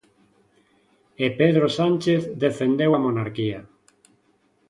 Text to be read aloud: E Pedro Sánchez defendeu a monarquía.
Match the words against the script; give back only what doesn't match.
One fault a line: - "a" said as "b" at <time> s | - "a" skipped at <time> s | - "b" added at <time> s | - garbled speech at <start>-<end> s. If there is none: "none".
none